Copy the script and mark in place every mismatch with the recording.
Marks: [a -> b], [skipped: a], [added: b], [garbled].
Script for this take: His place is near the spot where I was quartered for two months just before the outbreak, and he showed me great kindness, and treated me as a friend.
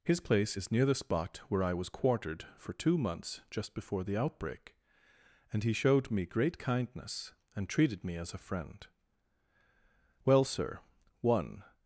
His place is near the spot where I was quartered for two months just before the outbreak, and he showed me great kindness, and treated me as a friend. [added: Well sir one]